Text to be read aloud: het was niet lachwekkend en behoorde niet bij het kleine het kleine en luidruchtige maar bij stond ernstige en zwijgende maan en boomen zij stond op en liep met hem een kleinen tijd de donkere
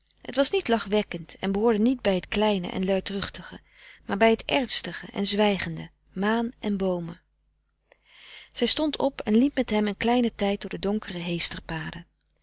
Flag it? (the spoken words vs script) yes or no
yes